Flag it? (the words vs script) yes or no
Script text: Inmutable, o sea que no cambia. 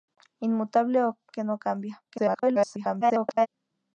yes